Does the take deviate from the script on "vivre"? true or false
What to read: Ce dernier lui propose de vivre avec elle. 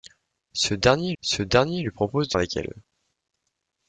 true